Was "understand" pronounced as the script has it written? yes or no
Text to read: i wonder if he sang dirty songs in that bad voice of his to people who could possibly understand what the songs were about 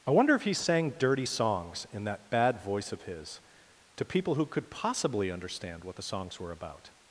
yes